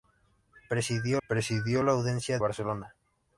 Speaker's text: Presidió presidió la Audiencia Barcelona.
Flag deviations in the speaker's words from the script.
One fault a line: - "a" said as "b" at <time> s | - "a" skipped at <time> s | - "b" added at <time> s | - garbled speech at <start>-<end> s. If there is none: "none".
none